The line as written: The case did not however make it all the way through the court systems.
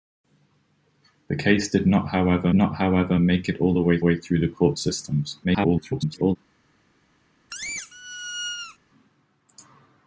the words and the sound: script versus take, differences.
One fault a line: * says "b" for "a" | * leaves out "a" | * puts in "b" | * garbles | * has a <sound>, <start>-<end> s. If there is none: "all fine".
* puts in "not however"
* puts in "way"
* garbles
* has a squeak, 7.5-8.8 s